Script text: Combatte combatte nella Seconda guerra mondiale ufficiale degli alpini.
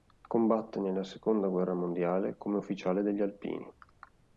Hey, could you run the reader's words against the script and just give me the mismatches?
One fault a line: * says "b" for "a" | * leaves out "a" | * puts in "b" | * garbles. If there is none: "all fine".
* leaves out "combatte"
* puts in "come"